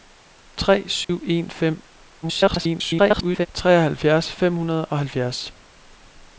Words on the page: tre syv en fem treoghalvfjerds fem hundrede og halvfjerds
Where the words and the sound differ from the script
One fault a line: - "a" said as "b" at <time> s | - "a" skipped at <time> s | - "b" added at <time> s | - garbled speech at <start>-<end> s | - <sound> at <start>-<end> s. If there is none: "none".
- dropout at 1.0-1.1 s
- garbled speech at 2.2-3.5 s